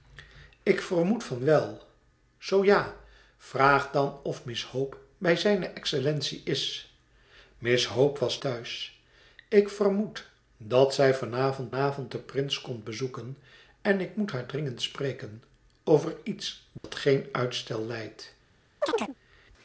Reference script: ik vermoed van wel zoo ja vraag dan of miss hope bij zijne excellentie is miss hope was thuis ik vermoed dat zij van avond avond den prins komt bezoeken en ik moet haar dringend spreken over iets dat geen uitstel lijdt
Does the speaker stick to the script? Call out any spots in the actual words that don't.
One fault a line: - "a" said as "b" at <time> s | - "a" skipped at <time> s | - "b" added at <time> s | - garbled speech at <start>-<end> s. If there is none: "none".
none